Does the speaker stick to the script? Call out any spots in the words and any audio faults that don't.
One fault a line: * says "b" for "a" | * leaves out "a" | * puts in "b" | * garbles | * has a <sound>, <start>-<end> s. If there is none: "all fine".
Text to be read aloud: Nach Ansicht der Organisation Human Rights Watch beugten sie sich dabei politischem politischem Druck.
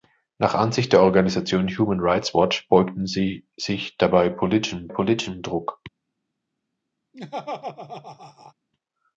* has a laugh, 7.1-8.5 s